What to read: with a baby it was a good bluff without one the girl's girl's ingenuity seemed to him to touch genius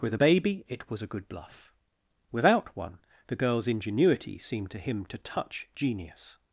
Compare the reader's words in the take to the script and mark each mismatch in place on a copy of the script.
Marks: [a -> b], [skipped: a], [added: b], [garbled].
with a baby it was a good bluff without one the girl's [skipped: girl's] ingenuity seemed to him to touch genius